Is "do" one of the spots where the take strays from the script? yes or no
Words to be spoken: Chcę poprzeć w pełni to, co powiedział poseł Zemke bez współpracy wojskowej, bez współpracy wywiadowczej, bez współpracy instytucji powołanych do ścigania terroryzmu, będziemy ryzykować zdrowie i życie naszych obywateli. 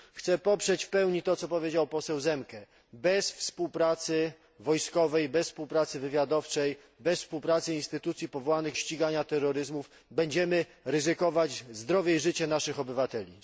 yes